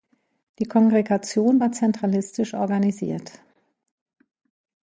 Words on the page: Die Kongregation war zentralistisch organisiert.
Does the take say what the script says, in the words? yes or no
yes